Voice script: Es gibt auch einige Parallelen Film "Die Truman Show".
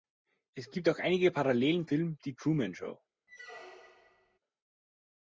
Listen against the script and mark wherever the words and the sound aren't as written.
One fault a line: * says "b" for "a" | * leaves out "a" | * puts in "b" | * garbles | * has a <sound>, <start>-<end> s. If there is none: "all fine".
* has a squeak, 3.3-4.4 s